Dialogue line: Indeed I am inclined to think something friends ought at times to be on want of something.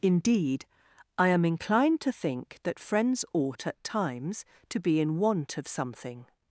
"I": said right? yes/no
yes